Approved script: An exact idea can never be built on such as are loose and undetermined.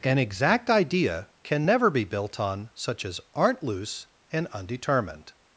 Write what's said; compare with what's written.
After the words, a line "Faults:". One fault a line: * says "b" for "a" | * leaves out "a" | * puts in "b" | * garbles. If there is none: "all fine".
An exact idea can never be built on such as aren't loose and undetermined.
Faults:
* says "aren't" for "are"